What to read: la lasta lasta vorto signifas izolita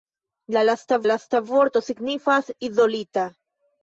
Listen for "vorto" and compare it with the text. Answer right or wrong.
right